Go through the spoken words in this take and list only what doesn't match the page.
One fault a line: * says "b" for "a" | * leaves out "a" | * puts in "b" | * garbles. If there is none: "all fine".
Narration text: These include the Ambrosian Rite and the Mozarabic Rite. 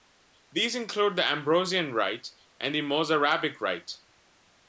all fine